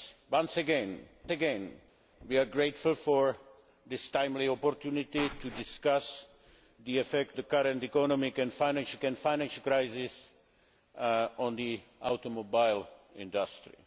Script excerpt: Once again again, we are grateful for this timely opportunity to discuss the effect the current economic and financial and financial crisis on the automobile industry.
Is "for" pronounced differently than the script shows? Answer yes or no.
no